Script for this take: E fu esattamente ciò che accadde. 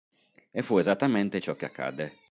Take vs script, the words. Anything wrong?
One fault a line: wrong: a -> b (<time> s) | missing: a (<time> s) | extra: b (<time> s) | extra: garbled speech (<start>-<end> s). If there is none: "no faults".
no faults